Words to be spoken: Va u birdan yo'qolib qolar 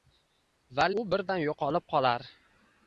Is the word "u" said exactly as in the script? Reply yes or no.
yes